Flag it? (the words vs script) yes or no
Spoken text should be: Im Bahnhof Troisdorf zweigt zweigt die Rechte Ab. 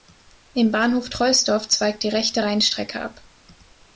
yes